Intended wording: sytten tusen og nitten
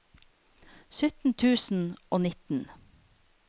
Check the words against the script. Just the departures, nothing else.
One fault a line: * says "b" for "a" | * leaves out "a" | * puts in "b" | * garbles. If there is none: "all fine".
all fine